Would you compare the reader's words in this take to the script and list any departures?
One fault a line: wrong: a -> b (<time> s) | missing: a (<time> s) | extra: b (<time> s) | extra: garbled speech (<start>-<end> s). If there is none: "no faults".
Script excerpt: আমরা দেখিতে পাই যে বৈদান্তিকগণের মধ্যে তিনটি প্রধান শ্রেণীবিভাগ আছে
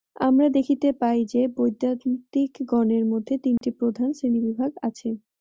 no faults